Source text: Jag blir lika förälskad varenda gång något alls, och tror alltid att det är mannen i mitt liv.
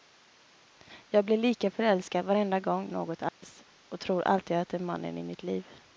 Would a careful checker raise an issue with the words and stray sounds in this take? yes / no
yes